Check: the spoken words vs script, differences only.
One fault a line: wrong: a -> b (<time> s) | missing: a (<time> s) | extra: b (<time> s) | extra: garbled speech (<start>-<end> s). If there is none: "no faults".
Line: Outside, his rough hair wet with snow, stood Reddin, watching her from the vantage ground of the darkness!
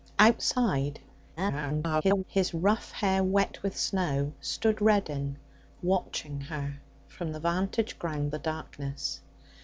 extra: garbled speech (1.4-2.2 s)
missing: of (8.3 s)